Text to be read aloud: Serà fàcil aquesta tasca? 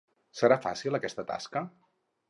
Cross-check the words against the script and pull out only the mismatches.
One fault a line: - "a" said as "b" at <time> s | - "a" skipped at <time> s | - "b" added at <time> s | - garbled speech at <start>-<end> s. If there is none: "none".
none